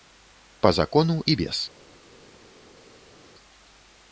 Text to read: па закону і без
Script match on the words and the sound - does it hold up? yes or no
yes